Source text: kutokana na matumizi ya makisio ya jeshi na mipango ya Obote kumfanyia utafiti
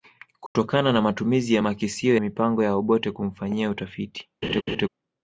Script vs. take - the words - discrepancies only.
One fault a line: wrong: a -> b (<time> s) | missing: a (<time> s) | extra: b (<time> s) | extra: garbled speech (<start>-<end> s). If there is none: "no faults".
missing: ya jeshi na (2.2 s)